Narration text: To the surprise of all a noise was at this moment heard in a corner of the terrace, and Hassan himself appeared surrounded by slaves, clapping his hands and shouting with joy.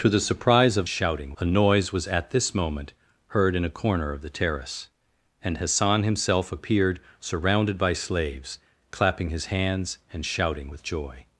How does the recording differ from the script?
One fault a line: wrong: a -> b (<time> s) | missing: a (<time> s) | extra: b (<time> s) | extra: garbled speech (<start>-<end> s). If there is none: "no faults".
wrong: all -> shouting (0.9 s)